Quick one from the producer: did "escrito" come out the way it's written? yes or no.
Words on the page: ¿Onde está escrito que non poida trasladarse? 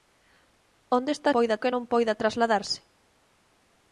no